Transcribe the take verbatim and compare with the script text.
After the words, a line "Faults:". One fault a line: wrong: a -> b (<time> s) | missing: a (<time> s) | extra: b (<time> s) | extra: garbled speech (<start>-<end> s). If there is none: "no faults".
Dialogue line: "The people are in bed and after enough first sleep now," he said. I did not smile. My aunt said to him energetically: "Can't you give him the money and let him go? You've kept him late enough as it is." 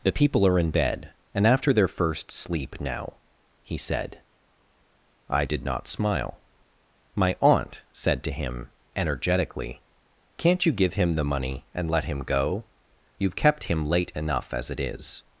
"The people are in bed and after their first sleep now," he said. I did not smile. My aunt said to him energetically: "Can't you give him the money and let him go? You've kept him late enough as it is."
Faults:
wrong: enough -> their (1.7 s)